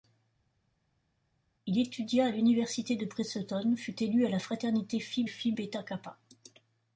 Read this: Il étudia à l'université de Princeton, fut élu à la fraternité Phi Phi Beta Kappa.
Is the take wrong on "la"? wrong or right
right